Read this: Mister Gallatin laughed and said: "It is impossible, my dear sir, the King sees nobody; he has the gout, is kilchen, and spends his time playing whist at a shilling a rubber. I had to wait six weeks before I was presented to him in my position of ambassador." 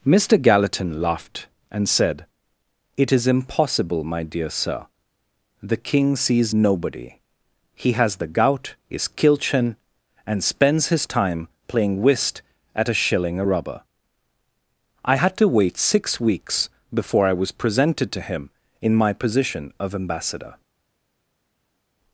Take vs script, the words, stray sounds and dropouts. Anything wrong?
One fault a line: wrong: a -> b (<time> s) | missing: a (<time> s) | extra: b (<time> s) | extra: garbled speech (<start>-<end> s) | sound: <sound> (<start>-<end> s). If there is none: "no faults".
no faults